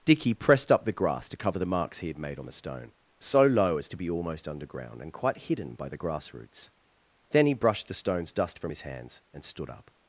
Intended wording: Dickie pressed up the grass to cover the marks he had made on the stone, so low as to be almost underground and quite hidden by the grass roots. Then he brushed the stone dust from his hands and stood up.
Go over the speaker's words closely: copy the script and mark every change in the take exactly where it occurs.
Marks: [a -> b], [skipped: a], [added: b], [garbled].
Dickie pressed up the grass to cover the marks he had made on the stone, so low as to be almost underground and quite hidden by the grass roots. Then he brushed the [stone -> stones] dust from his hands and stood up.